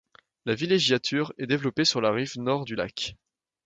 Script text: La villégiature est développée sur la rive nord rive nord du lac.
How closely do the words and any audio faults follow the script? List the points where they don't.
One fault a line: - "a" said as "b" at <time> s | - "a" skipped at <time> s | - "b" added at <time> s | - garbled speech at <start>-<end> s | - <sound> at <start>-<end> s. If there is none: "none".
- "rive nord" skipped at 2.6 s